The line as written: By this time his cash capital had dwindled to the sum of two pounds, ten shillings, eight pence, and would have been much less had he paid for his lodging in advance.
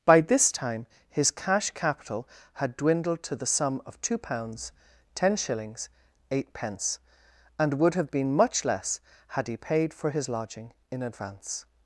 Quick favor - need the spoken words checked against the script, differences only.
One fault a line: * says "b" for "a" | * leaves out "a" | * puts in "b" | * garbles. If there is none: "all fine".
all fine